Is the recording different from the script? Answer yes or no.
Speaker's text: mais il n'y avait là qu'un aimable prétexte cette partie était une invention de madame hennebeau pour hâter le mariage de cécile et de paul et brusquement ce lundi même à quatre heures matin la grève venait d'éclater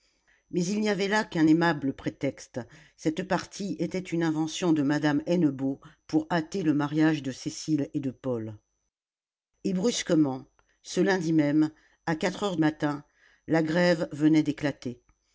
no